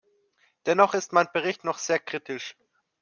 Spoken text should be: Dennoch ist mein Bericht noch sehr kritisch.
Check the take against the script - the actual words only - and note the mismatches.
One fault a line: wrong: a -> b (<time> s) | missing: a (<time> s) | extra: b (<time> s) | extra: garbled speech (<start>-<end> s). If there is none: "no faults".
no faults